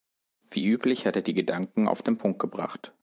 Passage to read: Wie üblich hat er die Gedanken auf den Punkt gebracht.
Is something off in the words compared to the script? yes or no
no